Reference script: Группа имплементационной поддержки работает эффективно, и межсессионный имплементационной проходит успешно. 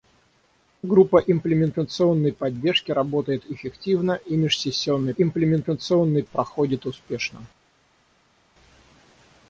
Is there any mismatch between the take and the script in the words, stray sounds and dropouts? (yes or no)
no